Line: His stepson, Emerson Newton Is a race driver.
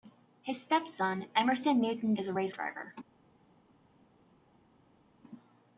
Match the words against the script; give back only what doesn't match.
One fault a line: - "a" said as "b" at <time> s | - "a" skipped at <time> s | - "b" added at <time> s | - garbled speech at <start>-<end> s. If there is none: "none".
none